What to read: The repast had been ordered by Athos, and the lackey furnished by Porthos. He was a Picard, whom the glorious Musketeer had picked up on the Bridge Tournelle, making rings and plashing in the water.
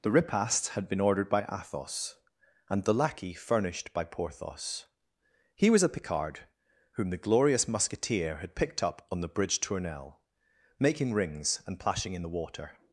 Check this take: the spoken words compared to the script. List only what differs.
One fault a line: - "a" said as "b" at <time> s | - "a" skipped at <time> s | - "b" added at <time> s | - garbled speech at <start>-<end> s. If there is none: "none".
none